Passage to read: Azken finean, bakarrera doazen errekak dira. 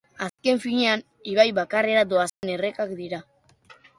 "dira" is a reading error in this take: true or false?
false